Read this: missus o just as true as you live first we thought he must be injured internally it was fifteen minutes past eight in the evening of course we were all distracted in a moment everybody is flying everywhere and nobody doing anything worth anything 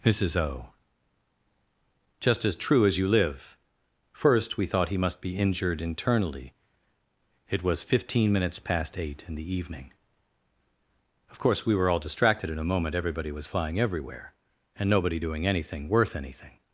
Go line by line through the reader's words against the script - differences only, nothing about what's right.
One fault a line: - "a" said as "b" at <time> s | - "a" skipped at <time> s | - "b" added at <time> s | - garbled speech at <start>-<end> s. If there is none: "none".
- "is" said as "was" at 13.3 s